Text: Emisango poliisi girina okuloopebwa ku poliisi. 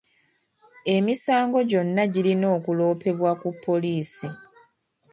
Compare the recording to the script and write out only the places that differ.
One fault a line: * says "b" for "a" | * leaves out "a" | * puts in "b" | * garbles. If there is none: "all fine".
* says "gyonna" for "poliisi"